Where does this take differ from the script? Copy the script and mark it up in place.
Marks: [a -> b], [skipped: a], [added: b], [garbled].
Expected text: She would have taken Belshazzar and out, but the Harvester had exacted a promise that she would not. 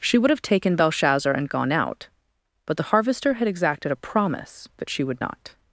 She would have taken Belshazzar and [added: gone] out, but the Harvester had exacted a promise that she would not.